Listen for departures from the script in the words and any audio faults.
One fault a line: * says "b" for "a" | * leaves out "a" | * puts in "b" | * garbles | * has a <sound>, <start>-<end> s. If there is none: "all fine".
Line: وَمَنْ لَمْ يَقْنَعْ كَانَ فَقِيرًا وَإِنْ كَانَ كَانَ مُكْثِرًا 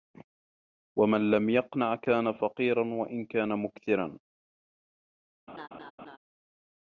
* leaves out "كَانَ"
* has a laugh, 5.5-6.2 s